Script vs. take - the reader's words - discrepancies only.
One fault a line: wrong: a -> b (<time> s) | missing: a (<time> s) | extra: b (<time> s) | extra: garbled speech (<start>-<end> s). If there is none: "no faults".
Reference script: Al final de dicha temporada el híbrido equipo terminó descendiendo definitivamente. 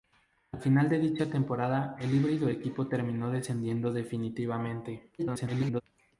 extra: garbled speech (5.2-5.8 s)